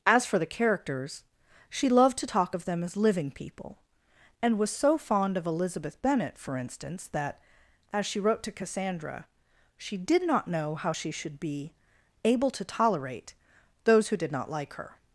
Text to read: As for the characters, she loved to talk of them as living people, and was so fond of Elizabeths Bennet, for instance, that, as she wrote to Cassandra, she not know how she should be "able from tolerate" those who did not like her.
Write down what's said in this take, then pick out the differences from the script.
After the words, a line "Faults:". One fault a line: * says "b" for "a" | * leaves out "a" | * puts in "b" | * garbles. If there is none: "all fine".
As for the characters, she loved to talk of them as living people, and was so fond of Elizabeth Bennet, for instance, that, as she wrote to Cassandra, she did not know how she should be "able to tolerate" those who did not like her.
Faults:
* says "Elizabeth" for "Elizabeths"
* puts in "did"
* says "to" for "from"